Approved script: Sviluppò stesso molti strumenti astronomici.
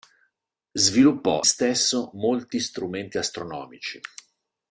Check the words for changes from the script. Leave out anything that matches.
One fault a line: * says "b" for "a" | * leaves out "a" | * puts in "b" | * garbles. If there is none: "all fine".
all fine